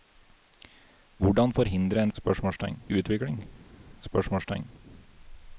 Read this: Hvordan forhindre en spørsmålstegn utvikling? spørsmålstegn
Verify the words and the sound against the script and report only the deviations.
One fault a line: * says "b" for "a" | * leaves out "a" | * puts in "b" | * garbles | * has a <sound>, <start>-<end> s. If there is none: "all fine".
all fine